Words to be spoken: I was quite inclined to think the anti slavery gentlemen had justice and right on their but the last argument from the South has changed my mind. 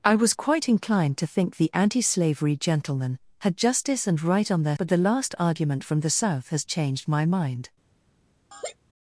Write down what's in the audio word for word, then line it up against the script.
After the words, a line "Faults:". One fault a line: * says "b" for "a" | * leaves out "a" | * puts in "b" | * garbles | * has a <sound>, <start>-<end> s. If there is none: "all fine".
I was quite inclined to think the anti slavery gentlemen had justice and right on their but the last argument from the South has changed my mind.
Faults:
* has a laugh, 8.5-8.8 s